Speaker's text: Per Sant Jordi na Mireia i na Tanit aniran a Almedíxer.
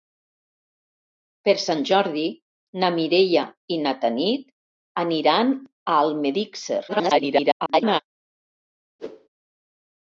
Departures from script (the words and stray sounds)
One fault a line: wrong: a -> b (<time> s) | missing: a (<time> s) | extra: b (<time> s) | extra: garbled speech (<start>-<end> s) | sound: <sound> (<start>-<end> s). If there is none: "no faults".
extra: garbled speech (6.9-8.0 s)
sound: whoosh (9.0-9.3 s)